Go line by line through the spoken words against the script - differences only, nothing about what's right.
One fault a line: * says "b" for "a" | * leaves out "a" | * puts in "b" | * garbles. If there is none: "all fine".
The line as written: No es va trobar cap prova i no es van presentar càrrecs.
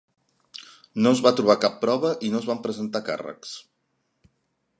all fine